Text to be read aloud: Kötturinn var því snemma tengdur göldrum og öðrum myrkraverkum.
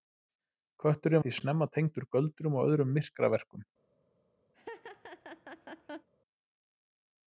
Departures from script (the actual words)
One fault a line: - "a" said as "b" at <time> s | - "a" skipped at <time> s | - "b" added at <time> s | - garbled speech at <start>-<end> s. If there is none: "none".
- "var" skipped at 1.2 s